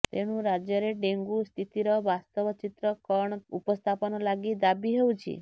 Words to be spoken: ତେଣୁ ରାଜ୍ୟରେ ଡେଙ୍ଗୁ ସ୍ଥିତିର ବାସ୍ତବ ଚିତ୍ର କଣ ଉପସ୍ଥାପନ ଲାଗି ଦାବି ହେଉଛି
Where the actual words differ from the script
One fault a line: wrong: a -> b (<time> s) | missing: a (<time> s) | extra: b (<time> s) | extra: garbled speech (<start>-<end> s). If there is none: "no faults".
no faults